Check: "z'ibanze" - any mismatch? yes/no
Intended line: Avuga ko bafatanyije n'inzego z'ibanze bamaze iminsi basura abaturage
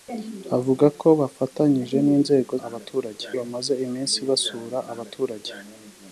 yes